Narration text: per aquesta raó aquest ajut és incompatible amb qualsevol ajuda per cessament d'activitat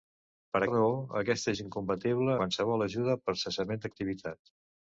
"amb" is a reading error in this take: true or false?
true